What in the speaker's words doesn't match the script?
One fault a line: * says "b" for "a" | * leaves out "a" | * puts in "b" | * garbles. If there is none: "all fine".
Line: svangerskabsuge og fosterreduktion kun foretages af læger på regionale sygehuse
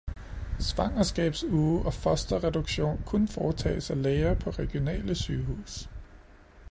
all fine